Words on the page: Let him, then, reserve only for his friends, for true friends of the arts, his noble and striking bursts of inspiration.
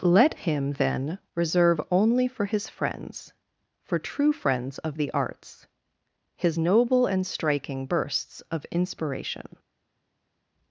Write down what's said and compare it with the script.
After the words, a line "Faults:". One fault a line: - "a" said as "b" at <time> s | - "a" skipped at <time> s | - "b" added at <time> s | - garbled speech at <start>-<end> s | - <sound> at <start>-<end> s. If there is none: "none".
Let him, then, reserve only for his friends, for true friends of the arts, his noble and striking bursts of inspiration.
Faults:
none